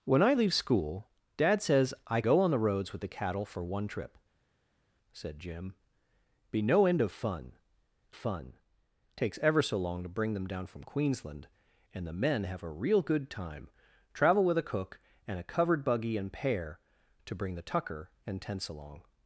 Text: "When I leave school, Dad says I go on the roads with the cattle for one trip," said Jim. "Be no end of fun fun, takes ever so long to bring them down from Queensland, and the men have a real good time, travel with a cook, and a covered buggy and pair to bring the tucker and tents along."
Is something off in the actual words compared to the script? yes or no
no